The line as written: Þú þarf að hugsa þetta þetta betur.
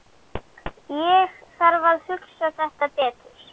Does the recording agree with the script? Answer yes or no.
no